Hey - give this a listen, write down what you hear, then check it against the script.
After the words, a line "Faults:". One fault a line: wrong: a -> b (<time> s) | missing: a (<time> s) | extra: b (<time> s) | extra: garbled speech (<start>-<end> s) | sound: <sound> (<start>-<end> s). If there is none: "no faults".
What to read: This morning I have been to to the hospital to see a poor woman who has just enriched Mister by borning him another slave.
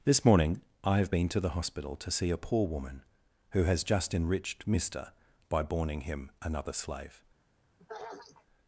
This morning I have been to the hospital to see a poor woman who has just enriched Mister by borning him another slave.
Faults:
missing: to (1.4 s)
sound: throat clearing (7.8-8.5 s)